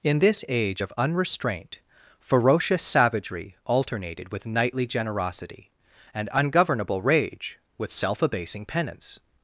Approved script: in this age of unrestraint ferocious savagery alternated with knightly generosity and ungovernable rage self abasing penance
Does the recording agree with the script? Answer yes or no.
no